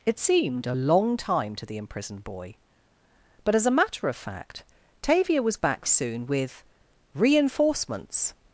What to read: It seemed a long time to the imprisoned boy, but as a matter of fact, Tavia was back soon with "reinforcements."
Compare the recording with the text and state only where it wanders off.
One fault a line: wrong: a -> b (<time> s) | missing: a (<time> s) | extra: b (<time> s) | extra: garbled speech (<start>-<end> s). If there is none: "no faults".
no faults